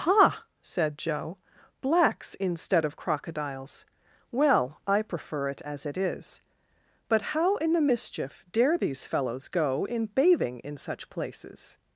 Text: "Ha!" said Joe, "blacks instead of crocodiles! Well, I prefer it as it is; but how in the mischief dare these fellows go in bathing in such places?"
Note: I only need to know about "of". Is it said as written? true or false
true